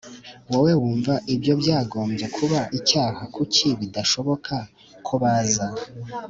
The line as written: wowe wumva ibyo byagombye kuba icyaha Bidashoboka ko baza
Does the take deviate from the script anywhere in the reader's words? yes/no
yes